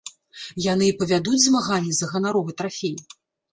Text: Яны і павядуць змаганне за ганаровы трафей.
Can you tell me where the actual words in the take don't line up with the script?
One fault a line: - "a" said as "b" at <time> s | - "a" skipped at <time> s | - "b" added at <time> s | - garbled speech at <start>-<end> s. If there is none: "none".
none